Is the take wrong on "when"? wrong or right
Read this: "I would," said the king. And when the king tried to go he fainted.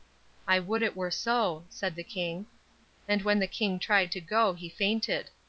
right